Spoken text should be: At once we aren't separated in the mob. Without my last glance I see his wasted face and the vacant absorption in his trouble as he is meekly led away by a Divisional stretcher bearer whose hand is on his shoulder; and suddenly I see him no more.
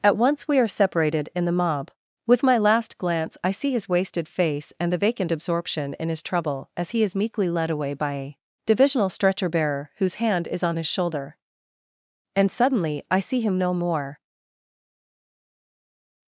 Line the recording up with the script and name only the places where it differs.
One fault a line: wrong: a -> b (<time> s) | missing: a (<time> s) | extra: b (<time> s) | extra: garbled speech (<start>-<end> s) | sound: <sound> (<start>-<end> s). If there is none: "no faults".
wrong: aren't -> are (0.6 s)
wrong: Without -> With (2.2 s)